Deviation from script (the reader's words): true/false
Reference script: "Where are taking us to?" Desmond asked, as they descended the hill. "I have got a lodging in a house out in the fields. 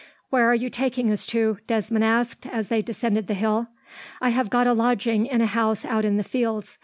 true